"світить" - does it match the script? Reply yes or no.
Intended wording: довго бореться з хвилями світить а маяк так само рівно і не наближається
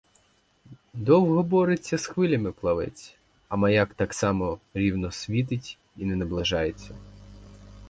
no